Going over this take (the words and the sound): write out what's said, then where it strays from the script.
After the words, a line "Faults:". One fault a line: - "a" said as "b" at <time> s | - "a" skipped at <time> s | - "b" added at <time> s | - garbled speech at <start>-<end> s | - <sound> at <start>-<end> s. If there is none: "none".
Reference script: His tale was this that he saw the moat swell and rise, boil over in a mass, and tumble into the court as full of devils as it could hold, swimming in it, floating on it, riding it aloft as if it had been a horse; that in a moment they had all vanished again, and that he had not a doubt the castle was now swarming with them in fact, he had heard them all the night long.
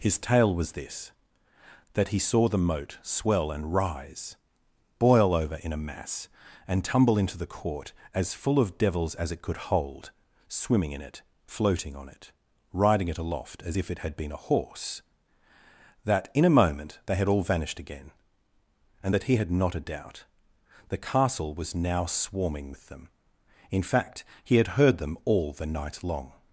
His tale was this that he saw the moat swell and rise, boil over in a mass, and tumble into the court as full of devils as it could hold, swimming in it, floating on it, riding it aloft as if it had been a horse; that in a moment they had all vanished again, and that he had not a doubt the castle was now swarming with them in fact, he had heard them all the night long.
Faults:
none